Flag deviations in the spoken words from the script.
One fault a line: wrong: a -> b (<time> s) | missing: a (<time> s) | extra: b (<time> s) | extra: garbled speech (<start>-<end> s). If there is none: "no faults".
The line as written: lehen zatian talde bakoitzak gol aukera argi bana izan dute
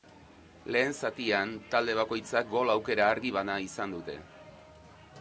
no faults